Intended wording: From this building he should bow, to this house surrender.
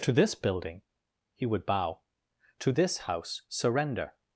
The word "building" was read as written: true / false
true